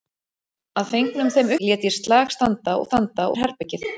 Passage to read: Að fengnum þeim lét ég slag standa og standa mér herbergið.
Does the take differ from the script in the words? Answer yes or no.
no